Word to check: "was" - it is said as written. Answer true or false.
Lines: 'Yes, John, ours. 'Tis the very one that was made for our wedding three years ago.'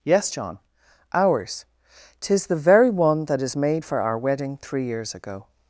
false